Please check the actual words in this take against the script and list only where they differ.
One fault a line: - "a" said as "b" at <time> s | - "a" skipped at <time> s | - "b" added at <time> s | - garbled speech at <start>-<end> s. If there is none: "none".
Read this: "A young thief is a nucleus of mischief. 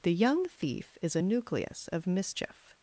- "A" said as "The" at 0.0 s